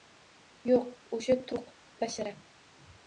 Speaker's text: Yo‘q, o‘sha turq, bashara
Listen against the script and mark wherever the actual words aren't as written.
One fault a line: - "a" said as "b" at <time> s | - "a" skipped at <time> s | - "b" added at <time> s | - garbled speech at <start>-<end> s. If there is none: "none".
none